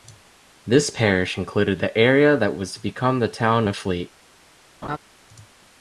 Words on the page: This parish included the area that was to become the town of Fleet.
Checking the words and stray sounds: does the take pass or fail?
fail